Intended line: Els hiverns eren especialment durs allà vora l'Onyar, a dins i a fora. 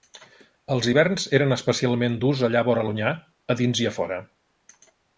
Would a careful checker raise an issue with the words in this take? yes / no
no